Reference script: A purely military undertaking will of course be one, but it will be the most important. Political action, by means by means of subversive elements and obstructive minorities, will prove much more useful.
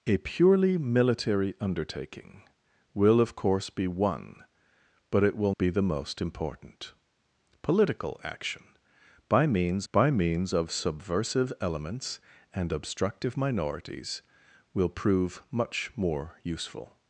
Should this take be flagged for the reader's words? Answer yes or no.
no